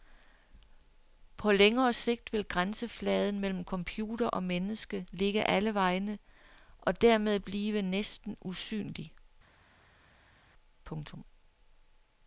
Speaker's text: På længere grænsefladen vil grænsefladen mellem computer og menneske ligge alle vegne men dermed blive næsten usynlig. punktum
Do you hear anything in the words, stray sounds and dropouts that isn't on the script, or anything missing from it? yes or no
yes